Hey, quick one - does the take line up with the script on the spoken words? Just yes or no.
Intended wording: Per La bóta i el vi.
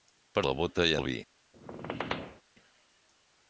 yes